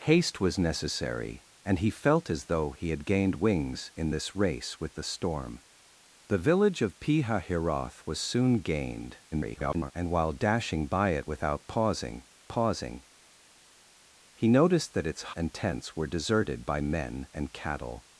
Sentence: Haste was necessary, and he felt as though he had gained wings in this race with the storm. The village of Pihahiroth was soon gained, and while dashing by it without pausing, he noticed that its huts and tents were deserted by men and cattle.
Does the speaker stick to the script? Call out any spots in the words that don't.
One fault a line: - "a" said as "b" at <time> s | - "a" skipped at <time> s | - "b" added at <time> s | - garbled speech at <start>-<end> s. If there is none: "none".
- garbled speech at 9.3-9.9 s
- "pausing" added at 12.5 s
- "huts" skipped at 15.4 s